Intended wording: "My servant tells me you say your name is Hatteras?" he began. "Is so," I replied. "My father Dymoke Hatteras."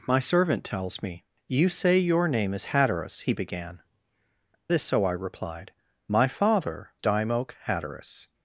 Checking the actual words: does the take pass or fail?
pass